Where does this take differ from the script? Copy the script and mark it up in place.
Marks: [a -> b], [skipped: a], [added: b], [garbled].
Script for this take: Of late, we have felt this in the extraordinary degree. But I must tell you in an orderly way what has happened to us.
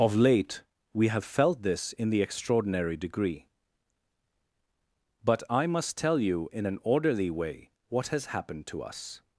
Of late, we have felt this in the extraordinary degree. But I must tell you in an orderly way what has happened to us.